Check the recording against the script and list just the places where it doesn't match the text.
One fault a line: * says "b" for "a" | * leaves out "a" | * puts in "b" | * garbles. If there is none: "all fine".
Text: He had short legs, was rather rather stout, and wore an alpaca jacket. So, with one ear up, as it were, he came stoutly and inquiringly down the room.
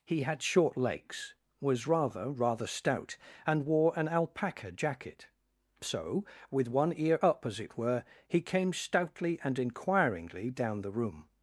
all fine